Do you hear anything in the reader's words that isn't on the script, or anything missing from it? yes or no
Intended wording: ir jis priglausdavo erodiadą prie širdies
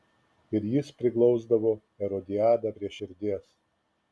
no